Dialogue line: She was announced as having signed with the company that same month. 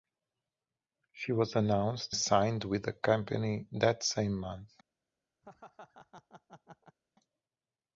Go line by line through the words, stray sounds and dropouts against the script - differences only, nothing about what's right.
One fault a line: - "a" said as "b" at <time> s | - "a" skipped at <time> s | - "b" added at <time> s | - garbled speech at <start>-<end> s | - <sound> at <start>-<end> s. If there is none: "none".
- "as having" skipped at 2.1 s
- laugh at 5.4-7.0 s